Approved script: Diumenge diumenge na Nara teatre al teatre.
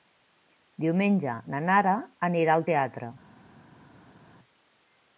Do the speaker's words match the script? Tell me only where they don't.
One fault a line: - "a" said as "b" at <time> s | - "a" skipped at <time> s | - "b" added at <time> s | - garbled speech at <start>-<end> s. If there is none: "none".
- "diumenge" skipped at 1.4 s
- "teatre" said as "anirà" at 2.3 s